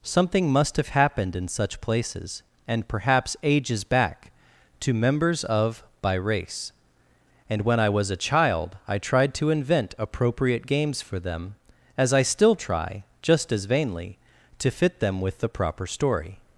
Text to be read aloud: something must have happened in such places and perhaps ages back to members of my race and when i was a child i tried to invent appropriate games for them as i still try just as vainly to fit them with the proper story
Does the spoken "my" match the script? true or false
false